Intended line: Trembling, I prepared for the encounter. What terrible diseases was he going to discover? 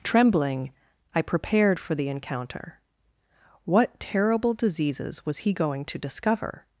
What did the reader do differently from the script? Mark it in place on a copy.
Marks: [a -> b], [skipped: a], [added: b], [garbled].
Trembling, I prepared for the encounter. What terrible diseases was he going to discover?